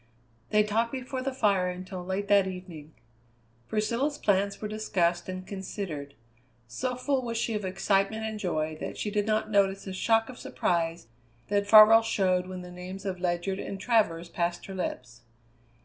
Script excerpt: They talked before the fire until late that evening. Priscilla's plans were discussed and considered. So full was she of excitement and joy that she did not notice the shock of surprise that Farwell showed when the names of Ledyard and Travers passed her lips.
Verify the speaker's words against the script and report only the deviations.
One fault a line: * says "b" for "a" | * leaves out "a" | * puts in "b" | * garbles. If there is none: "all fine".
all fine